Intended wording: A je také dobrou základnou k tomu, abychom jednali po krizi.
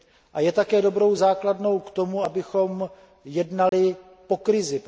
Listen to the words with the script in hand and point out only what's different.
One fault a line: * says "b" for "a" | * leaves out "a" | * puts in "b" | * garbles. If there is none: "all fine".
all fine